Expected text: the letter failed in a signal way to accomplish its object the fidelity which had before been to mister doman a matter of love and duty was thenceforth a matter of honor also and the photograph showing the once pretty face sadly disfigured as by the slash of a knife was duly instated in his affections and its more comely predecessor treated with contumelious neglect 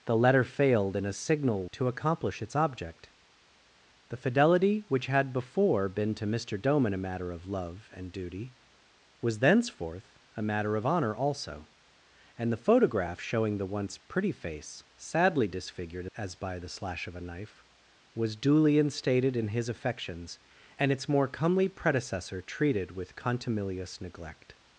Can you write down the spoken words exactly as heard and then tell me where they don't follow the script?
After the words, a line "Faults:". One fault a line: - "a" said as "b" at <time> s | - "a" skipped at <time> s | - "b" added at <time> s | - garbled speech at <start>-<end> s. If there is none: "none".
the letter failed in a signal to accomplish its object the fidelity which had before been to mister doman a matter of love and duty was thenceforth a matter of honor also and the photograph showing the once pretty face sadly disfigured as by the slash of a knife was duly instated in his affections and its more comely predecessor treated with contumelious neglect
Faults:
- "way" skipped at 1.7 s